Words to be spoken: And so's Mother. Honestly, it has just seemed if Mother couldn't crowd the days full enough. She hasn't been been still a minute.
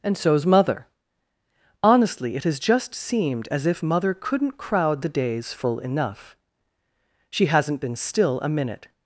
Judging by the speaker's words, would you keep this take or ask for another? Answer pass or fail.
fail